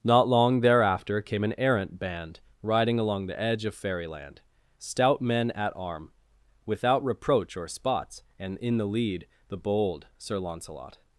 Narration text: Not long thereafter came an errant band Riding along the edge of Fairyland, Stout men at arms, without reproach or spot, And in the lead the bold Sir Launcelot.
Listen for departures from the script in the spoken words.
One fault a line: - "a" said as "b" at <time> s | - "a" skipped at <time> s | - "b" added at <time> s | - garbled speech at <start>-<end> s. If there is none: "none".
- "arms" said as "arm" at 5.8 s
- "spot" said as "spots" at 7.7 s